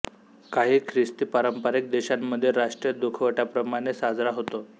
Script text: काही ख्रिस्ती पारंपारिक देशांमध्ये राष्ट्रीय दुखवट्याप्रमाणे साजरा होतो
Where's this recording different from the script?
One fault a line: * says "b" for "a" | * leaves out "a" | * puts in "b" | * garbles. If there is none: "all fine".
all fine